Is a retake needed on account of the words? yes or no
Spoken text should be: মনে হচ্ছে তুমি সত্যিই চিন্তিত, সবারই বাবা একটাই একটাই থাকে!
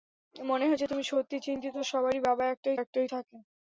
no